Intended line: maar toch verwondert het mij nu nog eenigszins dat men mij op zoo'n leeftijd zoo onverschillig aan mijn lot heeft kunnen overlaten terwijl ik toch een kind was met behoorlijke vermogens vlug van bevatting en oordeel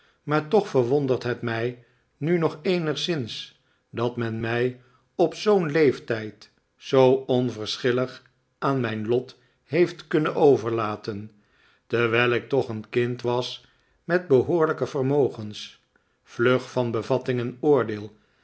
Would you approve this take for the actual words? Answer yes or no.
yes